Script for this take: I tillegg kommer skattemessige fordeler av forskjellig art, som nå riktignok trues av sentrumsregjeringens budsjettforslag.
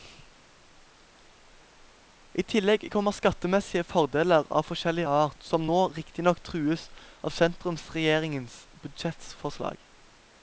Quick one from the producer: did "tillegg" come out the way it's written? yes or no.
yes